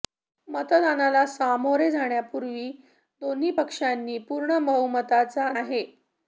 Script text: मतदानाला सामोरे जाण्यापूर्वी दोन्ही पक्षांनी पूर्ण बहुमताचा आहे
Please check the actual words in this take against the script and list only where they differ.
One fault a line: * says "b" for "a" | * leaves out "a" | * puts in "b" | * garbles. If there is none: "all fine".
all fine